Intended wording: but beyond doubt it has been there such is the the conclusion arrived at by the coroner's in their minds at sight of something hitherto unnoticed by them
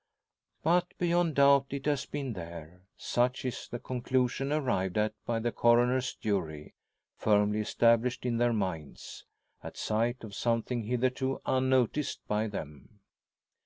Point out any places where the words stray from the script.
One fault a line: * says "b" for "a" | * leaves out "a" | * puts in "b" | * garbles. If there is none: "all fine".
* leaves out "the"
* puts in "jury firmly established"